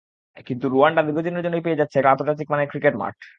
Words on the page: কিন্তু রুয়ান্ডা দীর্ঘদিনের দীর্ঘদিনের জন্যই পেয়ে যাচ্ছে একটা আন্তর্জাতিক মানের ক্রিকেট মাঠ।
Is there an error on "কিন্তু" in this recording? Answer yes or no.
no